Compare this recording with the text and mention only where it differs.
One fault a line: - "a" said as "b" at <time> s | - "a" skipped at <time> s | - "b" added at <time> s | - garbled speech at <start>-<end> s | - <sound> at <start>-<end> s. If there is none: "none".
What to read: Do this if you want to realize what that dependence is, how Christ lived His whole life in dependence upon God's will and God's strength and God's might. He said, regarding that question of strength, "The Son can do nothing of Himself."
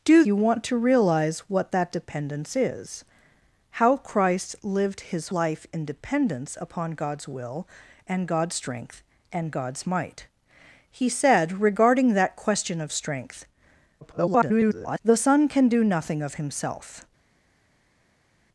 - "this if" skipped at 0.2 s
- "whole" skipped at 5.3 s
- garbled speech at 14.0-15.0 s